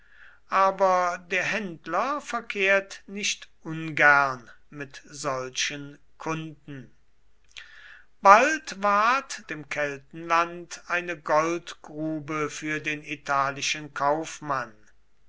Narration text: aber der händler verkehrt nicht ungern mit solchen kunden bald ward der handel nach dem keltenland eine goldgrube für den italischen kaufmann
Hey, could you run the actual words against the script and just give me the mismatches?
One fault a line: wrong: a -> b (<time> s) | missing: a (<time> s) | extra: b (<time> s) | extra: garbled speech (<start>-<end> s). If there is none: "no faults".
missing: der handel nach (9.4 s)